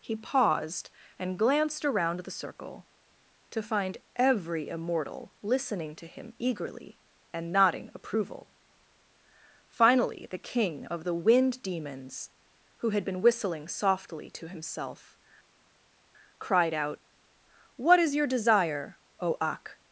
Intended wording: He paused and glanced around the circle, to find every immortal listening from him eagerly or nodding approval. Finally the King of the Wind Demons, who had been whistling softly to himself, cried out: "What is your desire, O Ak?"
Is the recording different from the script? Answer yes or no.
yes